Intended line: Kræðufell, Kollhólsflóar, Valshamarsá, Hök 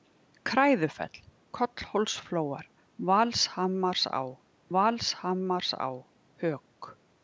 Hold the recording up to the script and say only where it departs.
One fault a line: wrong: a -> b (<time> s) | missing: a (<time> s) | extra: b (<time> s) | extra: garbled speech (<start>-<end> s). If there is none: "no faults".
extra: Valshamarsá (4.8 s)